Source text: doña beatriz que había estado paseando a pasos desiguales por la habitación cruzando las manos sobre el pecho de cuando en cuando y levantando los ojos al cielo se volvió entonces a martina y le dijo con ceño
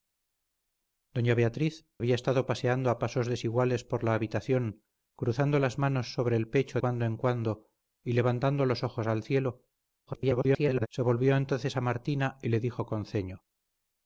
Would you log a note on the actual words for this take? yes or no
yes